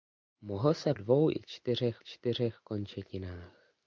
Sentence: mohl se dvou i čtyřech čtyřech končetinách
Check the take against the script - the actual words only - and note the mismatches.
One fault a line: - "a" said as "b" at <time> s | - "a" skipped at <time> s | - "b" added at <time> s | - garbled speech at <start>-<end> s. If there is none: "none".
none